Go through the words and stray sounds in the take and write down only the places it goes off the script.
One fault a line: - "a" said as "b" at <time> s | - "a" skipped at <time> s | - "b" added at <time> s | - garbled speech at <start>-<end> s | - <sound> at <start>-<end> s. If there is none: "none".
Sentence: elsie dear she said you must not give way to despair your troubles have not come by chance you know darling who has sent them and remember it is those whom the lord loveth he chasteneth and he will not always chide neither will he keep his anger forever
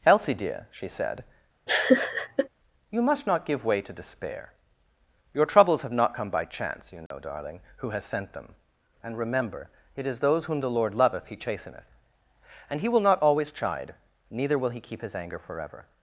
- laugh at 1.7-2.5 s
- dropout at 7.1-7.1 s